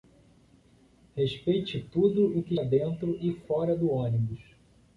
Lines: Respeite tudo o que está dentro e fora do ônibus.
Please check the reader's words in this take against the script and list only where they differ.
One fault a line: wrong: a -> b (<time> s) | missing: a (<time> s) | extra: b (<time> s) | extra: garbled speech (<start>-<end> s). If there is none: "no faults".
missing: está (2.5 s)